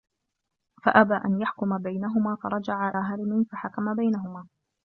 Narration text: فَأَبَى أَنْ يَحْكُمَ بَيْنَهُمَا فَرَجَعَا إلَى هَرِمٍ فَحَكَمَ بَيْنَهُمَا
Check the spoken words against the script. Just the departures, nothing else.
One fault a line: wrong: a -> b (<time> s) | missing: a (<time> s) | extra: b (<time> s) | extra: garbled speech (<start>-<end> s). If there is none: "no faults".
missing: إلَى (2.9 s)